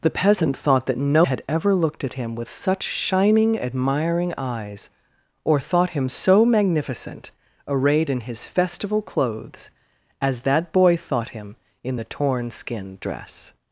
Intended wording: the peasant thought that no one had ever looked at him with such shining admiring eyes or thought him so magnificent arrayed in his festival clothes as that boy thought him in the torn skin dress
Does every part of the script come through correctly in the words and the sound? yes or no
no